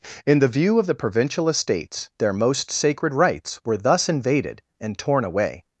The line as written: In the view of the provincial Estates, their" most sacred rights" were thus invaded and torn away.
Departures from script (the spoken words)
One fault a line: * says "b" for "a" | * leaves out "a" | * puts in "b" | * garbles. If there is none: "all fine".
all fine